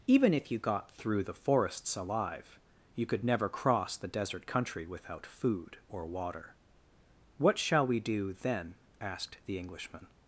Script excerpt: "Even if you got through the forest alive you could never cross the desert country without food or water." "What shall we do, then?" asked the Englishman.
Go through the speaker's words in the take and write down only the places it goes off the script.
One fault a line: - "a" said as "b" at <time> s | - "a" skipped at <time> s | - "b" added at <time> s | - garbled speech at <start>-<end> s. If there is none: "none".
- "forest" said as "forests" at 1.3 s